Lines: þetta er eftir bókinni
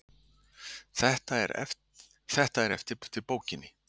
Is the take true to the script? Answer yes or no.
no